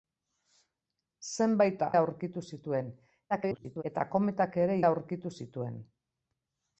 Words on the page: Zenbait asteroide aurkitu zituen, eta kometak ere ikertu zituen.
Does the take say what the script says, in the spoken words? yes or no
no